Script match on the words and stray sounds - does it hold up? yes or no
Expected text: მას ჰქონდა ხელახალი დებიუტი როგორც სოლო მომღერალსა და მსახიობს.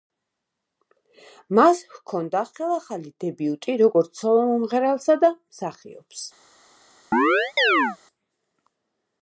no